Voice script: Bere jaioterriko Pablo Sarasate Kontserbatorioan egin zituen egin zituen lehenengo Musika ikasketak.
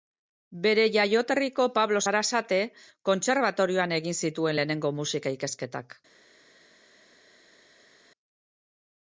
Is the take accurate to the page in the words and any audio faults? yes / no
no